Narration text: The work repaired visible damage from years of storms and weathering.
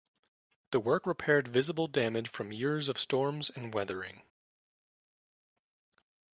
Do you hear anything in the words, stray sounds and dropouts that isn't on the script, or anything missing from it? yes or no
no